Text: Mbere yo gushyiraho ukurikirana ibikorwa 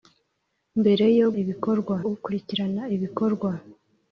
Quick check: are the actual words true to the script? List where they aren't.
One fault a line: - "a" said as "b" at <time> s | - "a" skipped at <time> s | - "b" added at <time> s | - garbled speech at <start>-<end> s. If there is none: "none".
- "gushyiraho" said as "ibikorwa" at 1.4 s